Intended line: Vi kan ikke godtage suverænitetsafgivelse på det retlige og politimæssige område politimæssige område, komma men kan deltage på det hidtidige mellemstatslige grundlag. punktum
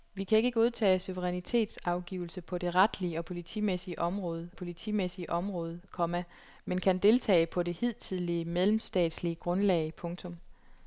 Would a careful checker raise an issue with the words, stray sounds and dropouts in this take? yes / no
no